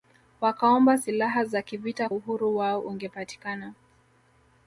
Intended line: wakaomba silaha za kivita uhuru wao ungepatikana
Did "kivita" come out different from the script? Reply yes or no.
no